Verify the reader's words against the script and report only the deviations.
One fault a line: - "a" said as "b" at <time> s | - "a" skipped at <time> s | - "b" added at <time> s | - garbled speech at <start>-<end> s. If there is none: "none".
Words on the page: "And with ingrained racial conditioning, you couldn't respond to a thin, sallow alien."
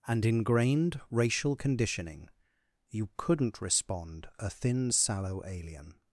- "with" skipped at 0.2 s
- "to" skipped at 4.3 s